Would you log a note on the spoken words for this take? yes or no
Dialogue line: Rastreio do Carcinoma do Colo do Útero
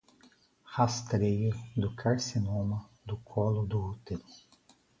no